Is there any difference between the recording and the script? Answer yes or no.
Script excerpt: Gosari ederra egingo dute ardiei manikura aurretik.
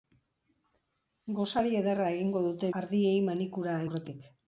no